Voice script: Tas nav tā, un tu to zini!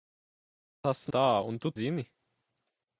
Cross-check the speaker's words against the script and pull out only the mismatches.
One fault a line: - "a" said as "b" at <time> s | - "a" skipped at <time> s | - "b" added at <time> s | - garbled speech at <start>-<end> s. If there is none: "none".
- "nav" skipped at 1.0 s
- "to" skipped at 1.8 s